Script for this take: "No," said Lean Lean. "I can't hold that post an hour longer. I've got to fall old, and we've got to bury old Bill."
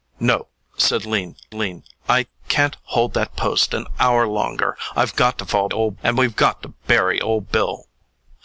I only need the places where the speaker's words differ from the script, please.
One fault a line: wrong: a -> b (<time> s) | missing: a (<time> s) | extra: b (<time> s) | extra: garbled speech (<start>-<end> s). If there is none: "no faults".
no faults